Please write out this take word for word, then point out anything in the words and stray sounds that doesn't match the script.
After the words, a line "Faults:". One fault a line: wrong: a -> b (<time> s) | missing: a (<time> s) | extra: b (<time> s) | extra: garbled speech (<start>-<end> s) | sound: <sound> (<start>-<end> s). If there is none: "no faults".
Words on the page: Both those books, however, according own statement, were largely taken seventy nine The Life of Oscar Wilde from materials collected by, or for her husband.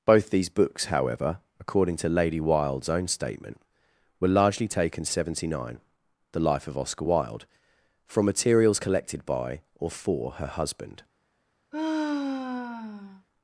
Both these books, however, according to Lady Wilde's own statement, were largely taken seventy nine The Life of Oscar Wilde from materials collected by, or for her husband.
Faults:
wrong: those -> these (0.3 s)
extra: to Lady Wilde's (2.0 s)
sound: sigh (11.7-13.3 s)